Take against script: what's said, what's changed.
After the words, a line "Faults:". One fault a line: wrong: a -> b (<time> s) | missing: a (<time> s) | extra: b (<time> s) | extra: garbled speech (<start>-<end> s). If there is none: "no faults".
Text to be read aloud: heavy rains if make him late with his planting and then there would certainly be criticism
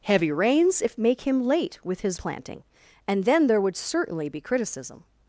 heavy rains if make him late with his planting and then there would certainly be criticism
Faults:
no faults